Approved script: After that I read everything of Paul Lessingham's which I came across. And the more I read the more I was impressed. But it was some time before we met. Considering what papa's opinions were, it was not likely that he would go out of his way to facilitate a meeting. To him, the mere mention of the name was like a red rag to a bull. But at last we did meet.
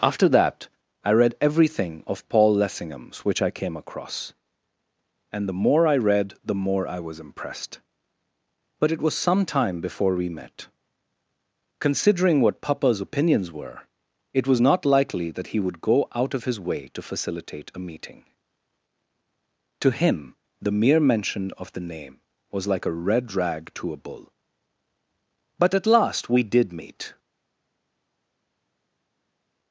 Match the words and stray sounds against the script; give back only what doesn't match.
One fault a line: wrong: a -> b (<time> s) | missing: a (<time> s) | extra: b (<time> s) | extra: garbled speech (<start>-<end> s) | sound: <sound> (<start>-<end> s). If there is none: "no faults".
no faults